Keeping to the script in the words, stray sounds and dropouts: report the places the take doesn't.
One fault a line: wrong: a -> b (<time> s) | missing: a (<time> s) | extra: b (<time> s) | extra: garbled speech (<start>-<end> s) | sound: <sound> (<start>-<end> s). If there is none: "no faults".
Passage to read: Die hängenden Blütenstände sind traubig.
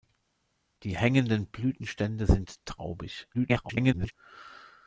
extra: garbled speech (3.3-4.1 s)